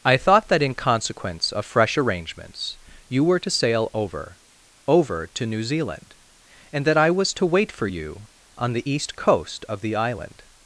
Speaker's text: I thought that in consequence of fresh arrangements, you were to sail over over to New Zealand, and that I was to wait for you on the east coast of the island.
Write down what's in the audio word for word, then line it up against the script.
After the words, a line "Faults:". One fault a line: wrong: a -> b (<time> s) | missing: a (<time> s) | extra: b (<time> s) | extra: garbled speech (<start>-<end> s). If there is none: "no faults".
I thought that in consequence of fresh arrangements, you were to sail over over to New Zealand, and that I was to wait for you on the east coast of the island.
Faults:
no faults